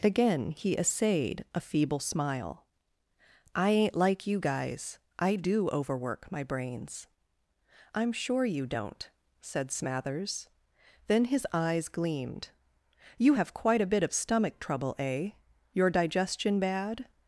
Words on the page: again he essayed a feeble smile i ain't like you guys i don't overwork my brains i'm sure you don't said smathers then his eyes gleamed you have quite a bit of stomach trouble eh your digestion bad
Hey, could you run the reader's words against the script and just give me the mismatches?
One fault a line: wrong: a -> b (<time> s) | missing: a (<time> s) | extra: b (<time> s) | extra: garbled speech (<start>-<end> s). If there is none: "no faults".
wrong: don't -> do (5.3 s)